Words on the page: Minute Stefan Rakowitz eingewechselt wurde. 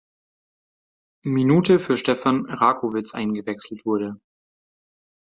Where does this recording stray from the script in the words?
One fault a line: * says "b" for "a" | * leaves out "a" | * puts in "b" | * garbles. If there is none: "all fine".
* puts in "für"